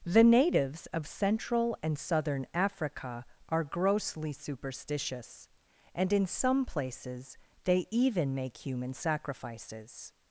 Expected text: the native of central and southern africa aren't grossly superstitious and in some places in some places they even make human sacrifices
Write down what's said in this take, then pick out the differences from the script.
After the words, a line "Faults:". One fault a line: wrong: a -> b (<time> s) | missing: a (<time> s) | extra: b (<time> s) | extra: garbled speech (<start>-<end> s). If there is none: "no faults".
the natives of central and southern africa are grossly superstitious and in some places they even make human sacrifices
Faults:
wrong: native -> natives (0.2 s)
wrong: aren't -> are (3.5 s)
missing: in some places (7.4 s)